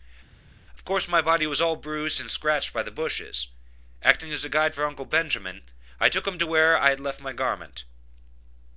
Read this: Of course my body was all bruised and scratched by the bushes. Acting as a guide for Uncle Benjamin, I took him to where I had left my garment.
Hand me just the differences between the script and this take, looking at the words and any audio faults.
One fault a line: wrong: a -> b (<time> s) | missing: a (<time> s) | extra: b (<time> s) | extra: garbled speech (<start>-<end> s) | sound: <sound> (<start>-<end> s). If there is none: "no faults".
no faults